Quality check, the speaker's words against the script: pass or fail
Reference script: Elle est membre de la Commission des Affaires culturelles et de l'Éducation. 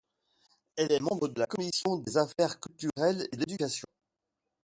fail